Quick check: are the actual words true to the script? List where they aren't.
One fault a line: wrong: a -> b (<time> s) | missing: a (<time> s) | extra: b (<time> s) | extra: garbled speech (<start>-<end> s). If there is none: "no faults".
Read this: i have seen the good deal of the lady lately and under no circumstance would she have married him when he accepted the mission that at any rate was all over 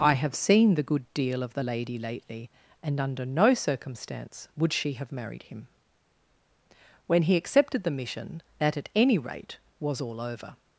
no faults